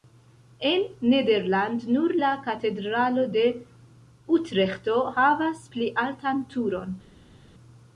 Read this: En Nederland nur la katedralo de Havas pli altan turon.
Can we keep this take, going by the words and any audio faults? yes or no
no